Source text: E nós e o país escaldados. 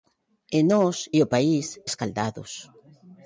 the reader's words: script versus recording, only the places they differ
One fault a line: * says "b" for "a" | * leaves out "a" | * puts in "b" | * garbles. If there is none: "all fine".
all fine